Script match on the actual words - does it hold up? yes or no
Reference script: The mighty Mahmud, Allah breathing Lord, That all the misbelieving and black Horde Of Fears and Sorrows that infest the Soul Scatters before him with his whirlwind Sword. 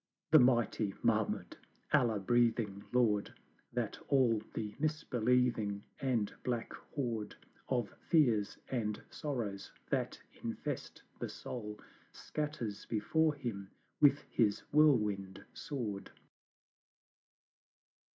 yes